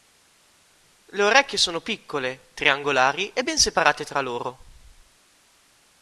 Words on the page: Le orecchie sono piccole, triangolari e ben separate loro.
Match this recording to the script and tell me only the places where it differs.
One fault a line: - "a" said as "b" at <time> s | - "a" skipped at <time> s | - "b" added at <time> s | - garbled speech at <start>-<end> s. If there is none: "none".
- "tra" added at 4.0 s